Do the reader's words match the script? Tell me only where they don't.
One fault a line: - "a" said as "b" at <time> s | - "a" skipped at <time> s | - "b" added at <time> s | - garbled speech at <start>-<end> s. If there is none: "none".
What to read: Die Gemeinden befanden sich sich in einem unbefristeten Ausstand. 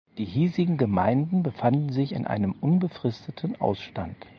- "hiesigen" added at 0.2 s
- "sich" skipped at 2.1 s